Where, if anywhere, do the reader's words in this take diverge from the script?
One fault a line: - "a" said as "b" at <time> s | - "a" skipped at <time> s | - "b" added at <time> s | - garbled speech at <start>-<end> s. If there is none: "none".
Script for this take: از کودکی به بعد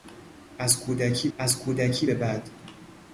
- "از کودکی" added at 1.4 s